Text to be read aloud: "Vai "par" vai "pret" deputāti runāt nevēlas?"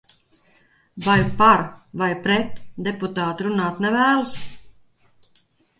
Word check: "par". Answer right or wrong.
right